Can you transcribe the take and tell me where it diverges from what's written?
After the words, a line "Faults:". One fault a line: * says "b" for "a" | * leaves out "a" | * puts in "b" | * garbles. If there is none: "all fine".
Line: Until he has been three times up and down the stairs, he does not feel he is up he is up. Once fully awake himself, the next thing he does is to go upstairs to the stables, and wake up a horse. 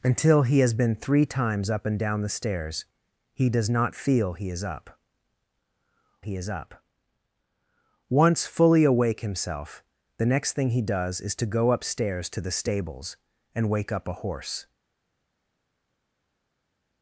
Until he has been three times up and down the stairs, he does not feel he is up he is up. Once fully awake himself, the next thing he does is to go upstairs to the stables, and wake up a horse.
Faults:
all fine